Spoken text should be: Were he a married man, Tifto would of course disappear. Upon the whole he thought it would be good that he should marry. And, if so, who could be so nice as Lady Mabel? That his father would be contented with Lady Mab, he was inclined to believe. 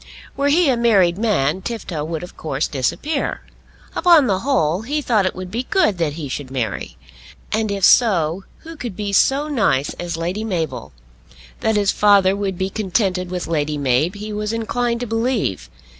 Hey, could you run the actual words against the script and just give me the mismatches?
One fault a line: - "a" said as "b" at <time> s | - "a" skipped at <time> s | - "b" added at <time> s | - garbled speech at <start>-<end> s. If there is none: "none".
none